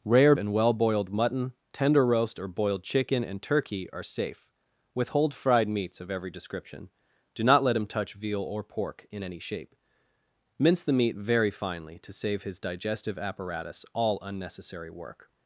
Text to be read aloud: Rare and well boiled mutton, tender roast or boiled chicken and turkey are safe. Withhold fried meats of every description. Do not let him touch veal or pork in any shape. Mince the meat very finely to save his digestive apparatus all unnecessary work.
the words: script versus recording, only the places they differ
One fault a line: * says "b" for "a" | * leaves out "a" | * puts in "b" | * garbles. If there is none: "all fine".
all fine